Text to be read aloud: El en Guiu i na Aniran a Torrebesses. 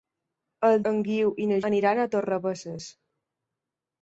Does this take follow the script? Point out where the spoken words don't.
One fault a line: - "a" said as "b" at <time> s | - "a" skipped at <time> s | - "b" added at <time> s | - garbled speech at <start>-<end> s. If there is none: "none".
none